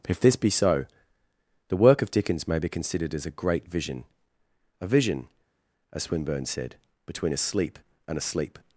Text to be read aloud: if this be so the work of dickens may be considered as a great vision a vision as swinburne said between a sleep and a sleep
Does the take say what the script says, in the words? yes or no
yes